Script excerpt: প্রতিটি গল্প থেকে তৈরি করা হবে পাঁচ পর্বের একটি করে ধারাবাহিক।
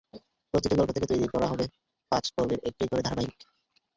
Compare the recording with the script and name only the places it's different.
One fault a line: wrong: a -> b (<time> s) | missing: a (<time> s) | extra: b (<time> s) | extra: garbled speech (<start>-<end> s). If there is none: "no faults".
no faults